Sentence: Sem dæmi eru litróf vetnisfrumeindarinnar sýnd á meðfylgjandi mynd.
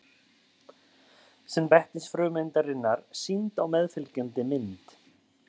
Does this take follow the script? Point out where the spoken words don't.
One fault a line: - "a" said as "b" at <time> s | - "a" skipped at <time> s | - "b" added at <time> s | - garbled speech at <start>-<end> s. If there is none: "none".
- "dæmi eru litróf" skipped at 1.7 s